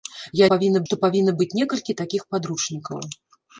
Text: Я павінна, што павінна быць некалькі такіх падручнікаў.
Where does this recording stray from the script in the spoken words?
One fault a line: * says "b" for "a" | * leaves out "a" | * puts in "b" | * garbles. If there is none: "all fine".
all fine